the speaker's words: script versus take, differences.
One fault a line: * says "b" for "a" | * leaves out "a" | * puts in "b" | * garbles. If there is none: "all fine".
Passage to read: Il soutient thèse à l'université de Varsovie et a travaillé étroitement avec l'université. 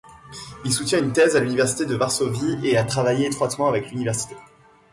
* puts in "une"